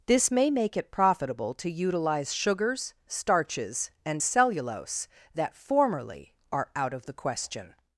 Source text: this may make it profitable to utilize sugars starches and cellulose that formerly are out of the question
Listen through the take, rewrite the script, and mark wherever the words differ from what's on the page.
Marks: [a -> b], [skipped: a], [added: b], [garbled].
this may make it profitable to utilize sugars starches and cellulose that formerly are out of the question